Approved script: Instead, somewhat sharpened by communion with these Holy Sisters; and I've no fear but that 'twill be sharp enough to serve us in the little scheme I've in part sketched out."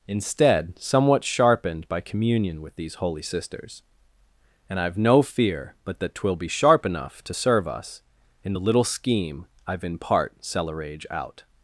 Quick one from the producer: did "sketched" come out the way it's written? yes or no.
no